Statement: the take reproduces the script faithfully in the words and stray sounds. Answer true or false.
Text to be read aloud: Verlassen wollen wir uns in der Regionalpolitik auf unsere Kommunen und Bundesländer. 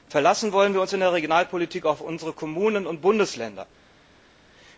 true